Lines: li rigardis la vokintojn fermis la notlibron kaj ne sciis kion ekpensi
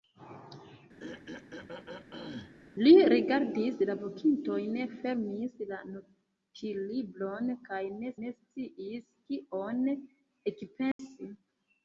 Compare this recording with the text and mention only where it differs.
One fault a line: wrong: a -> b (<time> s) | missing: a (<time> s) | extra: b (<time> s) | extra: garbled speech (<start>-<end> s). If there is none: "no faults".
extra: ne (8.2 s)